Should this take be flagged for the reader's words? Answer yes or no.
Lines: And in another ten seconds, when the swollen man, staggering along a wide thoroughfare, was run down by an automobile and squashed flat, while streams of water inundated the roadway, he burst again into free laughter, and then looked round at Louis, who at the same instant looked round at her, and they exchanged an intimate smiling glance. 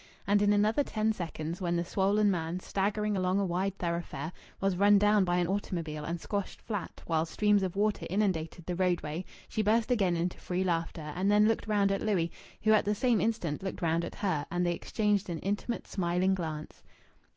yes